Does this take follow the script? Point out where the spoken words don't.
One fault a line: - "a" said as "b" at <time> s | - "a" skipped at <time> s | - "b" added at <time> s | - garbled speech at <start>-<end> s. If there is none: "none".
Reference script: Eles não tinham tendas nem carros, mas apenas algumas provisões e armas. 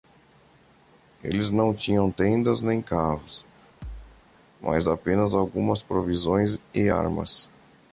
none